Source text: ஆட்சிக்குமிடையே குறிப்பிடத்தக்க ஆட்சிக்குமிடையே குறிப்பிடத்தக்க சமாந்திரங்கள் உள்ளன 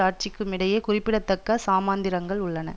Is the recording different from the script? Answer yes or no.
yes